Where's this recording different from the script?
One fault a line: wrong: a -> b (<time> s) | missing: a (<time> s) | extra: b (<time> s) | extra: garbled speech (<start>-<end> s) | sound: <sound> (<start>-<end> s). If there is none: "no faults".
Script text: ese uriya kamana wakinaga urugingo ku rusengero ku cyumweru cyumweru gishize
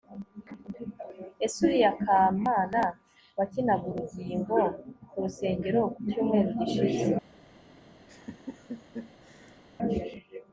missing: cyumweru (6.5 s)
sound: laugh (8.1-9.6 s)